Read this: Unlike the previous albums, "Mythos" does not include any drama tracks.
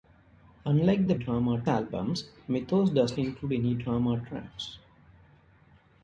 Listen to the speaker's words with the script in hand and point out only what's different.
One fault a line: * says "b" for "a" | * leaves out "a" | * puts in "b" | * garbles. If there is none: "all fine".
* says "drama" for "previous"
* leaves out "not"